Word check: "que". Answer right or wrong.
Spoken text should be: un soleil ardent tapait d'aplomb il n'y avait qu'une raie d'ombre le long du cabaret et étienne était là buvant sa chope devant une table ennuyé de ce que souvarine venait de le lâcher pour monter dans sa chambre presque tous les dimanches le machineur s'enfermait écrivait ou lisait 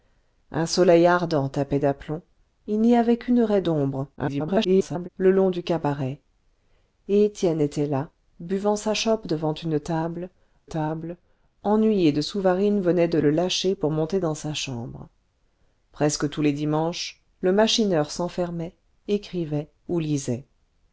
wrong